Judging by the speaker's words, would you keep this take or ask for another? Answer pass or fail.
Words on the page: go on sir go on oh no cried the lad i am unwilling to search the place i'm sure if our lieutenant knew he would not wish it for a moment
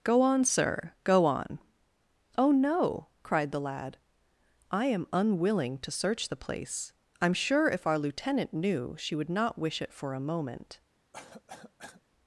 fail